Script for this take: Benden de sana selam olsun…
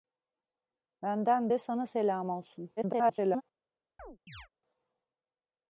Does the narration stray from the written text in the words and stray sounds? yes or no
yes